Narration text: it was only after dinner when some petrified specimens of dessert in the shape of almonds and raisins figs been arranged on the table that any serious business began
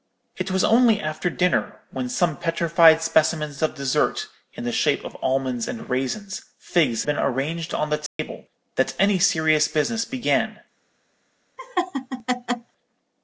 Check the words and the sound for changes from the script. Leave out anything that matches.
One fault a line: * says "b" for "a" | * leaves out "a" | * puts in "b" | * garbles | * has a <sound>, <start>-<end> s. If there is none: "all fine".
* has a dropout, 8.1-8.2 s
* has a laugh, 11.6-12.7 s